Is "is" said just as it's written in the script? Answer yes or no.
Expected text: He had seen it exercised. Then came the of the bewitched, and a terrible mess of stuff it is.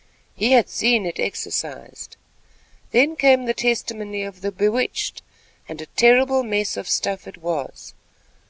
no